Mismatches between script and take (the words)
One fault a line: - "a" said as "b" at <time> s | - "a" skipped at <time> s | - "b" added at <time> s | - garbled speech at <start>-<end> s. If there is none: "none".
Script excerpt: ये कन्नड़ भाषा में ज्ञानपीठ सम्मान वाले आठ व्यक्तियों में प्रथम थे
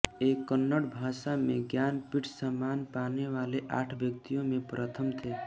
- "पाने" added at 3.0 s